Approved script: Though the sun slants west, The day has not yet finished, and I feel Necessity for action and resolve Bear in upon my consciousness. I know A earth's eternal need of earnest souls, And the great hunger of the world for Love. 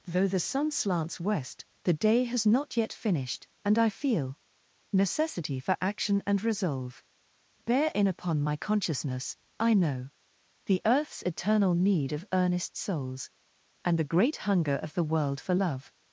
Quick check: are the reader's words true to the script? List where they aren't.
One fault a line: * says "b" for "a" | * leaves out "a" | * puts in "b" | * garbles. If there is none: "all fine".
* says "The" for "A"